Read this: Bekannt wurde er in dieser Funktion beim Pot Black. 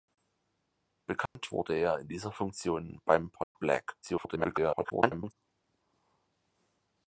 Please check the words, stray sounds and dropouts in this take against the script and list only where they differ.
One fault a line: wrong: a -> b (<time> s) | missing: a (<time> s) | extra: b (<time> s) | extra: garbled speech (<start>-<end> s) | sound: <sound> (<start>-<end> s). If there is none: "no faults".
sound: dropout (1.3-1.4 s)
sound: dropout (3.4-3.6 s)
extra: garbled speech (4.0-5.3 s)